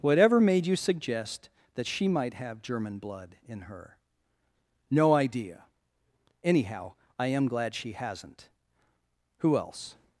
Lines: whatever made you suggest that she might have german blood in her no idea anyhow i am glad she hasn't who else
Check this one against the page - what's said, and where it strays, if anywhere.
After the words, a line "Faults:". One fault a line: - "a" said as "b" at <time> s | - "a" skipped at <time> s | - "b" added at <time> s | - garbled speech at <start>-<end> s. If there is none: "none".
whatever made you suggest that she might have german blood in her no idea anyhow i am glad she hasn't who else
Faults:
none